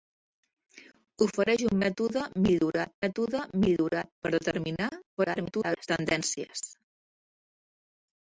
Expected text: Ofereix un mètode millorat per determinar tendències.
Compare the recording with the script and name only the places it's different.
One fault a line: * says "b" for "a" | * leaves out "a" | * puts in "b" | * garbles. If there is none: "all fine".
* puts in "mètode millorat"
* garbles